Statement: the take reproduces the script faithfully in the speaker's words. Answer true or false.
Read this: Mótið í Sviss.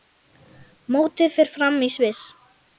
false